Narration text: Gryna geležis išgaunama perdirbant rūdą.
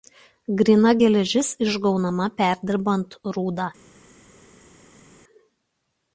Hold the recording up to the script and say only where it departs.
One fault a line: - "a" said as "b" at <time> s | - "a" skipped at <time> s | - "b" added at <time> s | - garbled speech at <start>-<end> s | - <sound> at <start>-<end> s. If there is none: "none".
none